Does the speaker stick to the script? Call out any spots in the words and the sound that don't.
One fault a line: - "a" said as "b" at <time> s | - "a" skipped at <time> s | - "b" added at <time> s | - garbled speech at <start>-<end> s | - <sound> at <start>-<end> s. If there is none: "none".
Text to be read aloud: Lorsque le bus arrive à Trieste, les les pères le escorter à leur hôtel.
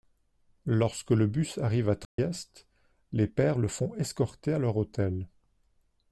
- dropout at 2.0-2.2 s
- "les" skipped at 3.3 s
- "font" added at 3.7 s